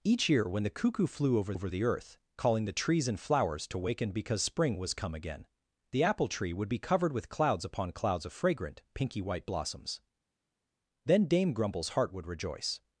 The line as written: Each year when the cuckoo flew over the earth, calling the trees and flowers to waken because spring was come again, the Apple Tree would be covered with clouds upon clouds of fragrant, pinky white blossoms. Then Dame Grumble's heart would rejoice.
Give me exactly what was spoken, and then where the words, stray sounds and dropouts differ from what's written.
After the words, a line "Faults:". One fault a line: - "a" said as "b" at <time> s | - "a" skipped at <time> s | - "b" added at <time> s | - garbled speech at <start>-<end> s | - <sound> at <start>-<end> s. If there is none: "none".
Each year when the cuckoo flew over over the earth, calling the trees and flowers to waken because spring was come again, the Apple Tree would be covered with clouds upon clouds of fragrant, pinky white blossoms. Then Dame Grumble's heart would rejoice.
Faults:
- "over" added at 1.5 s